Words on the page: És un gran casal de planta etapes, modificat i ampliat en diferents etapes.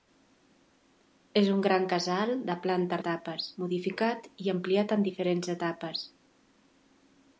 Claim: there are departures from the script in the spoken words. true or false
false